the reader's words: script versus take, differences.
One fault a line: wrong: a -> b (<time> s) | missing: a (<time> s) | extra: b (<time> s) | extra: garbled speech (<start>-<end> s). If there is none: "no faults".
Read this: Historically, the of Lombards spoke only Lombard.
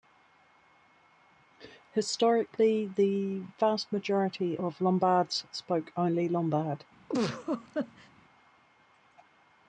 extra: vast majority (3.6 s)